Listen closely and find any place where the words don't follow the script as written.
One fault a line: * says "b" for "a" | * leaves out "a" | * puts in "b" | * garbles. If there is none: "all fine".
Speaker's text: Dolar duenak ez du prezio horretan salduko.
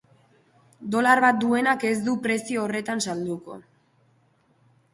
* puts in "bat"